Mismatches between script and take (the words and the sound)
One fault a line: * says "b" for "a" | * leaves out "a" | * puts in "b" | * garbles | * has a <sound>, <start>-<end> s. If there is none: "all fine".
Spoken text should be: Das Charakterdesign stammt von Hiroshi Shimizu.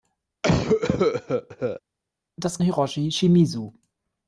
* has a cough, 0.4-1.8 s
* leaves out "Charakterdesign stammt von"